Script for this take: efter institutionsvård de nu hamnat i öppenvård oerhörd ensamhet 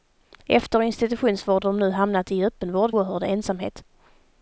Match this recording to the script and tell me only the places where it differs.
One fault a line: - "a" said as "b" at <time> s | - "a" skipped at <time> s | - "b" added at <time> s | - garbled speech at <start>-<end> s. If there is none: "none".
none